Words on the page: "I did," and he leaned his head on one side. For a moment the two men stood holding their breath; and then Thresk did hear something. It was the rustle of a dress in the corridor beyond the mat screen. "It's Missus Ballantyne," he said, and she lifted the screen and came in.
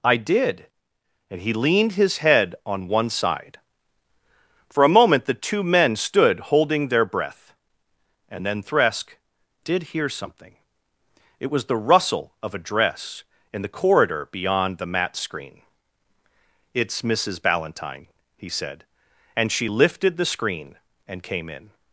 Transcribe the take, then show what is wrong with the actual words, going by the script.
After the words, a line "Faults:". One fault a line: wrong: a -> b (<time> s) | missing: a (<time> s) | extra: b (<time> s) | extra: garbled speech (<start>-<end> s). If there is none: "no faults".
"I did," and he leaned his head on one side. For a moment the two men stood holding their breath; and then Thresk did hear something. It was the rustle of a dress in the corridor beyond the mat screen. "It's Missus Ballantyne," he said, and she lifted the screen and came in.
Faults:
no faults